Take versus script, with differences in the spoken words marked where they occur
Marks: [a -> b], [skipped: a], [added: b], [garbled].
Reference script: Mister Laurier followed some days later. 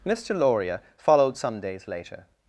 Mister Laurier followed some days later.